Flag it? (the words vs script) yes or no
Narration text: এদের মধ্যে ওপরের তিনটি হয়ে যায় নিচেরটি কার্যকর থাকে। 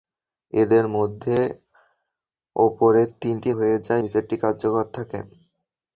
no